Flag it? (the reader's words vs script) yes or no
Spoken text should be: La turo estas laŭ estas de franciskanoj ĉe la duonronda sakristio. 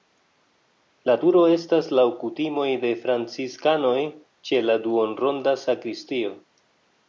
yes